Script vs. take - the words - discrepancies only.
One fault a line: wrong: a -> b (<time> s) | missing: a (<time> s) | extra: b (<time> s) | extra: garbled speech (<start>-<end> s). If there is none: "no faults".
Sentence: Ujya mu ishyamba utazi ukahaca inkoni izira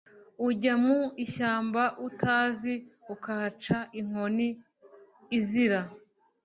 no faults